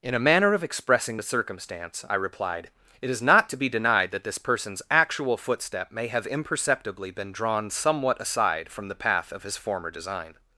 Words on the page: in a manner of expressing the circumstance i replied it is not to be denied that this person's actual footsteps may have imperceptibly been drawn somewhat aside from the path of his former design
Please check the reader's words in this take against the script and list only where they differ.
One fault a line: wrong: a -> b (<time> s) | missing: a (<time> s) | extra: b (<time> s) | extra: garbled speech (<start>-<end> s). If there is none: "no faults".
wrong: footsteps -> footstep (5.4 s)